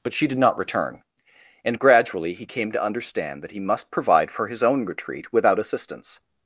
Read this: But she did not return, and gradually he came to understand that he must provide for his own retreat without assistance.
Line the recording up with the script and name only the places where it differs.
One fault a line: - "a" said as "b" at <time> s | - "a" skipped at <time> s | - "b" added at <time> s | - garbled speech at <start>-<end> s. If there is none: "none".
none